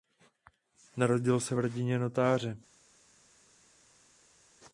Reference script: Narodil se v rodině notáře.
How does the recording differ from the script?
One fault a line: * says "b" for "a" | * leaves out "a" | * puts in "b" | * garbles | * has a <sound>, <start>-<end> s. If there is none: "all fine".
all fine